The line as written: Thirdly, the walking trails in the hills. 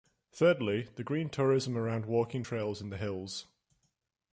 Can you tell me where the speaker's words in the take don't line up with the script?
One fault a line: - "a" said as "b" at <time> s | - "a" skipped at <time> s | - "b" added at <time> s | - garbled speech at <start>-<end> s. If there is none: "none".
- "green tourism around" added at 1.0 s